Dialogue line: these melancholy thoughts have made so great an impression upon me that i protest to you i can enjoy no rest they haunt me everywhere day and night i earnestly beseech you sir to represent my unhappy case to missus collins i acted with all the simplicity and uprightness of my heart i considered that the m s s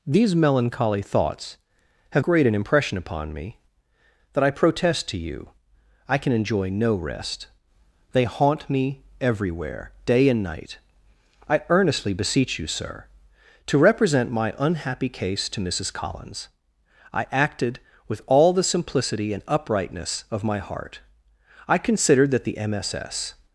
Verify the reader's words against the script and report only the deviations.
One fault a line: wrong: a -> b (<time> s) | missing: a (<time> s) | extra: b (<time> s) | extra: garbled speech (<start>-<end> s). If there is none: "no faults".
missing: made so (2.2 s)